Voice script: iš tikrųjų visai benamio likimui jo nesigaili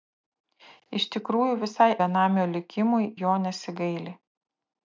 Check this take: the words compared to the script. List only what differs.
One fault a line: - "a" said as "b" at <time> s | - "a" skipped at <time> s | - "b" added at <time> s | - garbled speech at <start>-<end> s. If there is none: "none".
none